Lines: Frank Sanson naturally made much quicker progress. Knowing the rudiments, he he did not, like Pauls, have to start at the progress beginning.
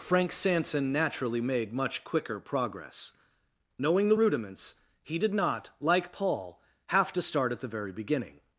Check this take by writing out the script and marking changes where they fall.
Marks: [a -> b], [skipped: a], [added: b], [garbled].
Frank Sanson naturally made much quicker progress. Knowing the rudiments, he [skipped: he] did not, like [Pauls, -> Paul] have to start at the [progress -> very] beginning.